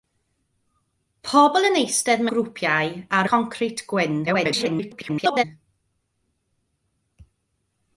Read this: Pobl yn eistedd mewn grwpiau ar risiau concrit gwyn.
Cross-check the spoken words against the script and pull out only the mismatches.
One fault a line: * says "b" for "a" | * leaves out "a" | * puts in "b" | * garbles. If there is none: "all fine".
* leaves out "mewn"
* leaves out "risiau"
* garbles